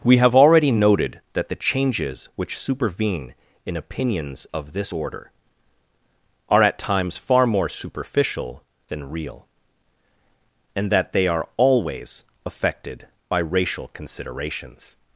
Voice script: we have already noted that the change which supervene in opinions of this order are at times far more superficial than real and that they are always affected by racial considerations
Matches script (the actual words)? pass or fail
fail